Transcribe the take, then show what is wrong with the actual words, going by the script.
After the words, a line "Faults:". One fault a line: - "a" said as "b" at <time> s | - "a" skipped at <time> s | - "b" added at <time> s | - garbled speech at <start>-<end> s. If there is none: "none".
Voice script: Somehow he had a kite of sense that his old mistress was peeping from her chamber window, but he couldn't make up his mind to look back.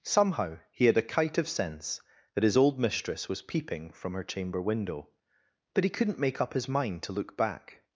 Somehow he had a kite of sense that his old mistress was peeping from her chamber window, but he couldn't make up his mind to look back.
Faults:
none